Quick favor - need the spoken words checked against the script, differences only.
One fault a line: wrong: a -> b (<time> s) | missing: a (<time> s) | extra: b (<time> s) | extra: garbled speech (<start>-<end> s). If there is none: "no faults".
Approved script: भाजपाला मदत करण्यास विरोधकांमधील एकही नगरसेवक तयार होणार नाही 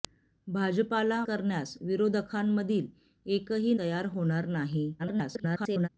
missing: मदत (1.2 s)
missing: नगरसेवक (3.7 s)
extra: garbled speech (5.0-5.9 s)